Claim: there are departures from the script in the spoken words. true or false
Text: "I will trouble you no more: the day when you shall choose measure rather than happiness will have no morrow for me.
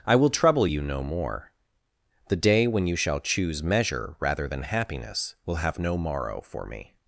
false